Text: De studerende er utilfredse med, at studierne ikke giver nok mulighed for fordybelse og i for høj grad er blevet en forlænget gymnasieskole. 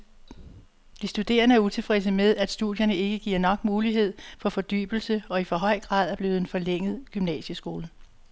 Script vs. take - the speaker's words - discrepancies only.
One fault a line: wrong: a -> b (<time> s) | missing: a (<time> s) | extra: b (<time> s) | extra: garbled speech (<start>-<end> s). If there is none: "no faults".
no faults